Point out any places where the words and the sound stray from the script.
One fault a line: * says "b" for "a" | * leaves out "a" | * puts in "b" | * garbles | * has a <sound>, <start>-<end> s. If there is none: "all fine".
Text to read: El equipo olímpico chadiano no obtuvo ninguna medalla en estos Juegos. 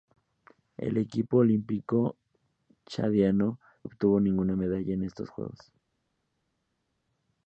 * leaves out "no"